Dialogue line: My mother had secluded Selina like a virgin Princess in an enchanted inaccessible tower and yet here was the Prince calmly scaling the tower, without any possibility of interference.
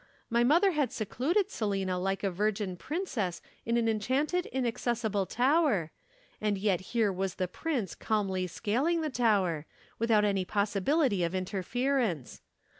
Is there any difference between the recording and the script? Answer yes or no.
no